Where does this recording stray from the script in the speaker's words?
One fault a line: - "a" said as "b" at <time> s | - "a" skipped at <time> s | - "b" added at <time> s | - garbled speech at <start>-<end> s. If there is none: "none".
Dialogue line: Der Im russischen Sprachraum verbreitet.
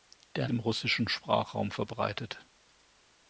none